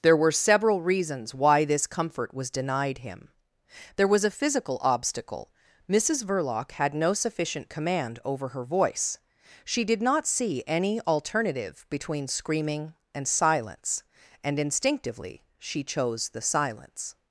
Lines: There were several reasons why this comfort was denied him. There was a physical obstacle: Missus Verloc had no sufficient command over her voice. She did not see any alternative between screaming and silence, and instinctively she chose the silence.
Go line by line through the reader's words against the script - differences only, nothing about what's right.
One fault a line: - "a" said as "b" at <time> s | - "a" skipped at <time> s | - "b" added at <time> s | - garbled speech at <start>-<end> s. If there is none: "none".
none